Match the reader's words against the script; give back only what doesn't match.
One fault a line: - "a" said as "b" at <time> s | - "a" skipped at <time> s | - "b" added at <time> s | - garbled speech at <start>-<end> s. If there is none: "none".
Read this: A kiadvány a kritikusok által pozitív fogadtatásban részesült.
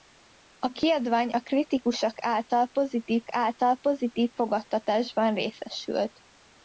- "által pozitív" added at 3.3 s